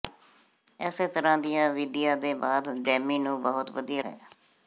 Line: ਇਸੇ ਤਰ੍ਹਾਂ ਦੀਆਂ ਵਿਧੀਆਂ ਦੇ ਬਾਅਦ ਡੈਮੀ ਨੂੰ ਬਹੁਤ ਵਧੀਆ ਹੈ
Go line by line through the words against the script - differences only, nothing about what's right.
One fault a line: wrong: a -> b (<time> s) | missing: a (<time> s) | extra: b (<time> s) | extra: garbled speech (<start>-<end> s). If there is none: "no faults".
no faults